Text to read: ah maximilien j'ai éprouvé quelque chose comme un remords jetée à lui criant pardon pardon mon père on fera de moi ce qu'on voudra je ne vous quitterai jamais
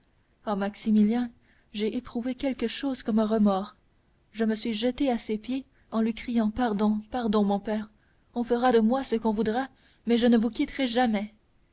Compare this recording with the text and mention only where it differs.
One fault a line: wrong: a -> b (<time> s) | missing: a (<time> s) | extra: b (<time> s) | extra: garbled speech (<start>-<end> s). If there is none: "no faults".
extra: je me suis (4.3 s)
extra: ses pieds en (5.2 s)
extra: mais (10.0 s)